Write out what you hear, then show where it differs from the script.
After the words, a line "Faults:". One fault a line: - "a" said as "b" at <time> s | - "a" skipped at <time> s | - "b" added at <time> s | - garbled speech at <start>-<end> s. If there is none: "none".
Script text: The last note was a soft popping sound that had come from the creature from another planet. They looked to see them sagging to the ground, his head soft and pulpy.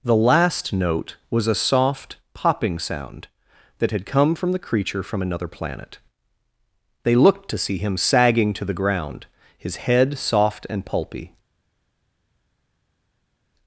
The last note was a soft popping sound that had come from the creature from another planet. They looked to see him sagging to the ground, his head soft and pulpy.
Faults:
- "them" said as "him" at 7.8 s